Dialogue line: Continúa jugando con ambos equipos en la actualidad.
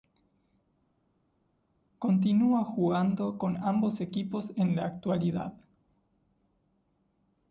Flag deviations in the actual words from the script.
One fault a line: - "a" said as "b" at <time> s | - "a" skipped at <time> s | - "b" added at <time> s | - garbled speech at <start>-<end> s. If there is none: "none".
none